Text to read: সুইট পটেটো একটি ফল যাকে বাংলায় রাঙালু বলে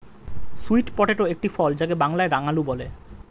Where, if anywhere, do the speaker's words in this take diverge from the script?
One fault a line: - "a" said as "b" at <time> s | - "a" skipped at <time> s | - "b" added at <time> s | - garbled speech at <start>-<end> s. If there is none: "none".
none